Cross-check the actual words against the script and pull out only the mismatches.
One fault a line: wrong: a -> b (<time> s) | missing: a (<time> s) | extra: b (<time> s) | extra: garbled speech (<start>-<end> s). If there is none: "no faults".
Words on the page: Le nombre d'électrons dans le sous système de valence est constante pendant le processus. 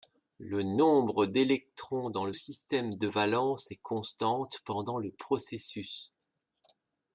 missing: sous (2.3 s)